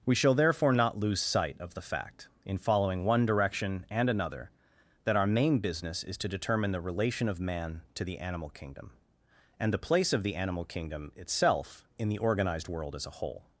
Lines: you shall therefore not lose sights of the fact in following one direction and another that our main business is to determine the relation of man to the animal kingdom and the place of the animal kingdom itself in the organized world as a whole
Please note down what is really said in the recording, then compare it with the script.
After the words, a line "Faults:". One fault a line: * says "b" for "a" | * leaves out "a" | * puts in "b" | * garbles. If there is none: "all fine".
we shall therefore not lose sight of the fact in following one direction and another that our main business is to determine the relation of man to the animal kingdom and the place of the animal kingdom itself in the organized world as a whole
Faults:
* says "we" for "you"
* says "sight" for "sights"